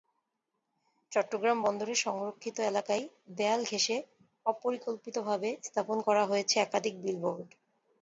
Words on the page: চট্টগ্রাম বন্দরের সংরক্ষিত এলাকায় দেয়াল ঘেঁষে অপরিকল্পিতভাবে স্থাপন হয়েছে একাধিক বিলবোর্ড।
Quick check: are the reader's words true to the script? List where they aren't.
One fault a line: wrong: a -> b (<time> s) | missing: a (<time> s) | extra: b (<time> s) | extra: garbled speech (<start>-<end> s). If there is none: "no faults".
extra: করা (6.1 s)